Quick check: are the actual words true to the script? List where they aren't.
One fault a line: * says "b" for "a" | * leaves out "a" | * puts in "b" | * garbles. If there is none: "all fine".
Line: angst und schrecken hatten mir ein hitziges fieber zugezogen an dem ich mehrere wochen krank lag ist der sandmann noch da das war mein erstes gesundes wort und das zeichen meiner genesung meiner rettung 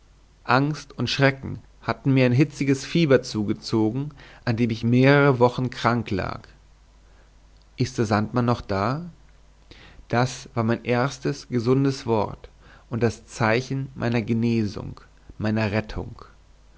all fine